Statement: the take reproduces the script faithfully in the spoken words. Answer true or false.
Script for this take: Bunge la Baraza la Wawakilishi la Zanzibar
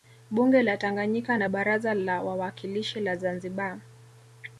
false